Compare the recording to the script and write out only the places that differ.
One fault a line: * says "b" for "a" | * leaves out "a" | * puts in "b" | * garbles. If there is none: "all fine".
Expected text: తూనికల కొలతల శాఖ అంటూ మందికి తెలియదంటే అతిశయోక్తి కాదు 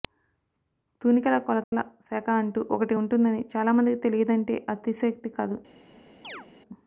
* puts in "ఒకటి ఉంటుందని చాలా"